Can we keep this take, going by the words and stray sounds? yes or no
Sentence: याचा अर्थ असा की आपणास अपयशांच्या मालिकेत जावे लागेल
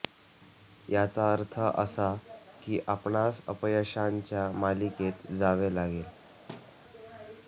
no